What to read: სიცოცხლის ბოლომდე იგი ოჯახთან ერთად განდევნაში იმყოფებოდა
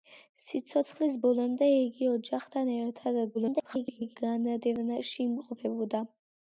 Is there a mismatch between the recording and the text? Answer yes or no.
yes